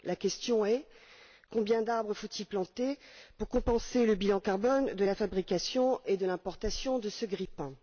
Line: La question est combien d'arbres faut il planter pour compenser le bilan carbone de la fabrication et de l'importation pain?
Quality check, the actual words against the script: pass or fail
fail